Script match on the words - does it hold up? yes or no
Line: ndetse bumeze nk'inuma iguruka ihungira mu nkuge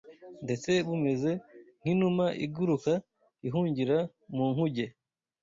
yes